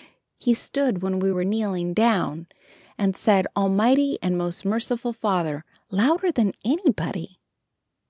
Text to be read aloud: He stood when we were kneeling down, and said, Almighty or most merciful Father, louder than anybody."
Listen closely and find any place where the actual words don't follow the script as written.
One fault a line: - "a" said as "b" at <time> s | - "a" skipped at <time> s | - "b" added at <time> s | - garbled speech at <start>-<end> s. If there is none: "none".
- "or" said as "and" at 4.2 s